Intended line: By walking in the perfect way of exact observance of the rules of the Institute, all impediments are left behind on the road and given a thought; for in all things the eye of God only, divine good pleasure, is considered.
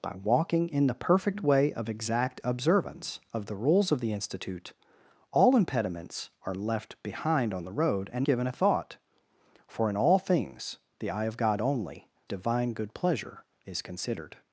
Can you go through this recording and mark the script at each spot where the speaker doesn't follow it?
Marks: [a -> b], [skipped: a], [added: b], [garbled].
By walking in the perfect way of exact observance of the rules of the Institute, all impediments are left behind on the road and given a thought; for in all things the eye of God only, divine good pleasure, is considered.